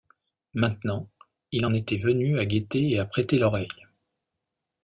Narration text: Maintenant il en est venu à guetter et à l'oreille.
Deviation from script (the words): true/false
true